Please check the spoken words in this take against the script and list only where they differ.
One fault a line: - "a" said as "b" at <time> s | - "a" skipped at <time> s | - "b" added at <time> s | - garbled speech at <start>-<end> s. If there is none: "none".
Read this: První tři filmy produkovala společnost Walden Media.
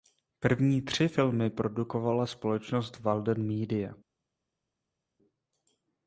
none